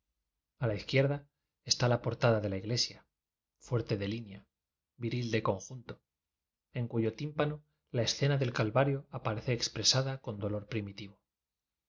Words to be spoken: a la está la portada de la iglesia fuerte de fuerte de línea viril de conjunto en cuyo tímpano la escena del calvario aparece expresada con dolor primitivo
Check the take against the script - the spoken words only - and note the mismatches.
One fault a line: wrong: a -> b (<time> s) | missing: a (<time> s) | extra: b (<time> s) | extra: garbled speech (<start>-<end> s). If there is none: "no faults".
extra: izquierda (0.7 s)
missing: fuerte de (4.1 s)